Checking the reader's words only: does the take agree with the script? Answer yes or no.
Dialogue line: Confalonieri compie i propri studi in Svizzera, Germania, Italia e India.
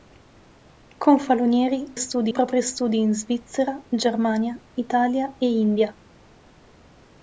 no